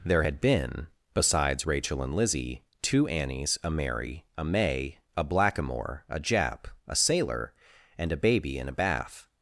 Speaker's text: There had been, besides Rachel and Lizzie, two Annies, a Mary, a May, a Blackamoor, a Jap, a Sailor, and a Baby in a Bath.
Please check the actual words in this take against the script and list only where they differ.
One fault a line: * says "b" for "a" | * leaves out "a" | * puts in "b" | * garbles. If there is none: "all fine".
all fine